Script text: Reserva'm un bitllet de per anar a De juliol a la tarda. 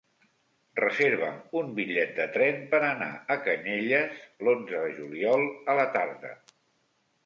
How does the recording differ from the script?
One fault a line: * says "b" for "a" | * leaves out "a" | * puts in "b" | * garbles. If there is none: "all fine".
* puts in "tren"
* puts in "Canyelles l'onze"